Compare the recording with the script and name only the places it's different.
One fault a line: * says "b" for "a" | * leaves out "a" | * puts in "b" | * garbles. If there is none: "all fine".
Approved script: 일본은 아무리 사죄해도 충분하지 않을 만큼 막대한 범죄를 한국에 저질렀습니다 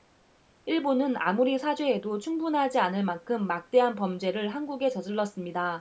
all fine